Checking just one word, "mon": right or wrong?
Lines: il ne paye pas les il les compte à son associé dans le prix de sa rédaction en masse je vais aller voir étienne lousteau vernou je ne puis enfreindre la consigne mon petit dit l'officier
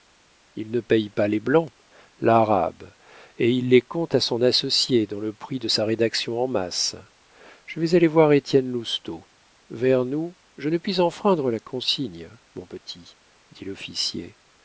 right